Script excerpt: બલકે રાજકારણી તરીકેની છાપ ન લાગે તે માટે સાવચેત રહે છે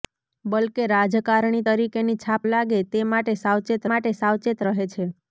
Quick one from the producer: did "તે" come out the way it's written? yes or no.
yes